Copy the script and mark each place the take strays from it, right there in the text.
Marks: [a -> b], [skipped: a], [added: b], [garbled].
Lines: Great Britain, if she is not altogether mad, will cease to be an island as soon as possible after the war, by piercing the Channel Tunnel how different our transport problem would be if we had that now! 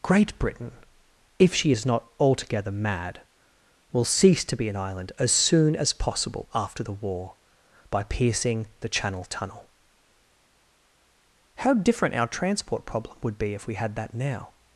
Great Britain, if she is not altogether mad, will cease to be an island as soon as possible after the war, by piercing the Channel Tunnel how different our transport problem would be if we had that now!